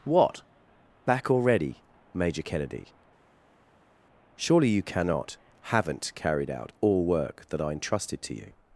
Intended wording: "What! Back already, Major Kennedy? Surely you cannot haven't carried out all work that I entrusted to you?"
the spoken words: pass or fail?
pass